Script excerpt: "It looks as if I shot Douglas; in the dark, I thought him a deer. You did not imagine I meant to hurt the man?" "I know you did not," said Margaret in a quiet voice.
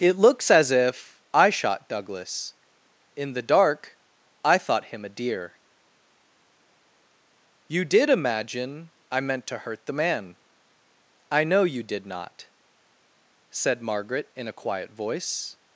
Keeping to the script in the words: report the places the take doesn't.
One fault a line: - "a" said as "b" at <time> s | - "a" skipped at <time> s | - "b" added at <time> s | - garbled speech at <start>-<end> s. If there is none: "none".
- "not" skipped at 8.1 s